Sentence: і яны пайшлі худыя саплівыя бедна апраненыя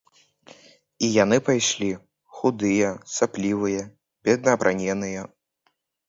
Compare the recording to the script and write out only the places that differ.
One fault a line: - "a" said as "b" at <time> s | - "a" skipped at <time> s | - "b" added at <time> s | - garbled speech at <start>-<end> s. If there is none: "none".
none